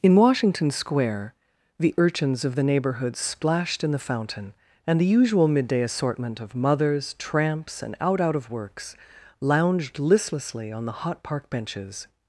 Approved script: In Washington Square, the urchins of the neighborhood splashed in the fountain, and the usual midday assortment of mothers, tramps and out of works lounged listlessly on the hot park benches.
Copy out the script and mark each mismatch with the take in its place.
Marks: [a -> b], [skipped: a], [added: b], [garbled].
In Washington Square, the urchins of the neighborhood splashed in the fountain, and the usual midday assortment of mothers, tramps and out [added: out] of works lounged listlessly on the hot park benches.